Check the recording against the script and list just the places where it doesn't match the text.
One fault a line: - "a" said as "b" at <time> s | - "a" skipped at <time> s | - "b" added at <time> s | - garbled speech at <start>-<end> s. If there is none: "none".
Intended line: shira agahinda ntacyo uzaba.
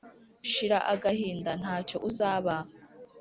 none